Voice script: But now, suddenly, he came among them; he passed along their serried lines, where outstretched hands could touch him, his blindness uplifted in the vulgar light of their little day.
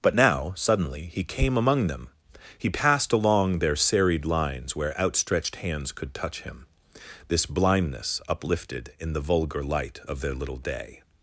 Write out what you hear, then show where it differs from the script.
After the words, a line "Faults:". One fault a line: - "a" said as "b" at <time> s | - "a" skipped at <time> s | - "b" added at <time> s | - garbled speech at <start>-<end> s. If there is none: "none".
But now, suddenly, he came among them; he passed along their serried lines, where outstretched hands could touch him, this blindness uplifted in the vulgar light of their little day.
Faults:
- "his" said as "this" at 7.3 s